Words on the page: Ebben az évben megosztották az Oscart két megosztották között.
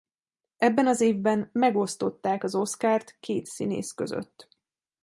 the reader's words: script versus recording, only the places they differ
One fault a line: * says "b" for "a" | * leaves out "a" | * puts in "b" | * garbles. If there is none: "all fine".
* says "színész" for "megosztották"